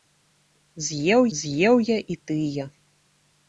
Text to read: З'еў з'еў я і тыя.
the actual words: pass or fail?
pass